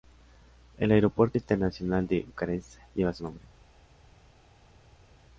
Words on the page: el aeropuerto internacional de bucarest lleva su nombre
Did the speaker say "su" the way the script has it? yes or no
yes